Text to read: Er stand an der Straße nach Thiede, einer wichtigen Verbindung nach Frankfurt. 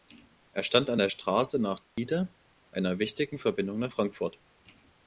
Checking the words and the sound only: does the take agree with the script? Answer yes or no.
no